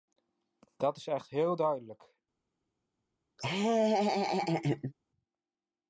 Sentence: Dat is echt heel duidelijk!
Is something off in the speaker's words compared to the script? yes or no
no